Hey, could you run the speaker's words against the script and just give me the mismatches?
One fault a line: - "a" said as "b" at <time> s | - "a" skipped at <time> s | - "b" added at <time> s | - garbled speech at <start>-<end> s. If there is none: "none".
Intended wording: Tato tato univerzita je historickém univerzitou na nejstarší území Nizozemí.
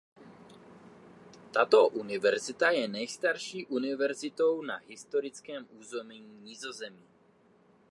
- "tato" skipped at 1.9 s
- "historickém" said as "nejstarší" at 2.9 s
- "nejstarší" said as "historickém" at 4.8 s